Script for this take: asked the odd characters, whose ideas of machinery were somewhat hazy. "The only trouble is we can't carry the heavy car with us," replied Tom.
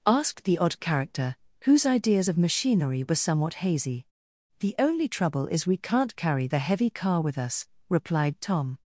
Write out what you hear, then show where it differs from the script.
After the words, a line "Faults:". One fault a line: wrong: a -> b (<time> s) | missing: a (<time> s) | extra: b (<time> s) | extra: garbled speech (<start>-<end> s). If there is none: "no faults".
asked the odd character, whose ideas of machinery were somewhat hazy. "The only trouble is we can't carry the heavy car with us," replied Tom.
Faults:
wrong: characters -> character (0.8 s)